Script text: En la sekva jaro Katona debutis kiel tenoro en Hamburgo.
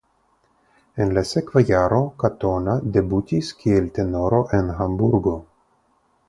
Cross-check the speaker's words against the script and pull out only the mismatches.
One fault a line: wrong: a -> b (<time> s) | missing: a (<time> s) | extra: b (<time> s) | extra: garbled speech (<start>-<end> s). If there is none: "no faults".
no faults